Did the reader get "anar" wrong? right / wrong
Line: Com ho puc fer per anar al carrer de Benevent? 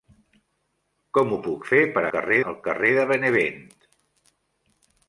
wrong